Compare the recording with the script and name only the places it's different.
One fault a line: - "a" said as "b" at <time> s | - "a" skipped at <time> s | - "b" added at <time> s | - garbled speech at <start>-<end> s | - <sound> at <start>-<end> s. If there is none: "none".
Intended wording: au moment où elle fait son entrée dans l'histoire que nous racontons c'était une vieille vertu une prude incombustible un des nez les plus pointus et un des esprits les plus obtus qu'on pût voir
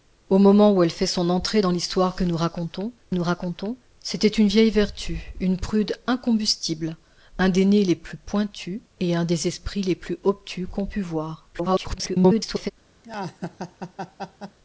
- "nous racontons" added at 3.1 s
- garbled speech at 11.5-12.7 s
- laugh at 13.0-14.6 s